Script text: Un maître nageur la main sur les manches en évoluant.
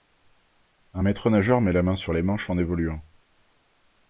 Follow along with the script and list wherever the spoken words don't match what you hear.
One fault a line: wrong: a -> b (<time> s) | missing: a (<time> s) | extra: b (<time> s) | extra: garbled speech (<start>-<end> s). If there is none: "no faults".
extra: met (1.6 s)